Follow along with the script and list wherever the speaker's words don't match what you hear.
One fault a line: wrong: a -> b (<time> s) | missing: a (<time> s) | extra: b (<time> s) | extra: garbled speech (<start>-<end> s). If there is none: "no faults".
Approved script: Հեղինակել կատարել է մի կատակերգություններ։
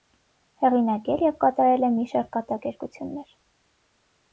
extra: և (1.3 s)
extra: շարք (2.1 s)